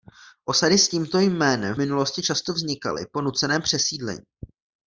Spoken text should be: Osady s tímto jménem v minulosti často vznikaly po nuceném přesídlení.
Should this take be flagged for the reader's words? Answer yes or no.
no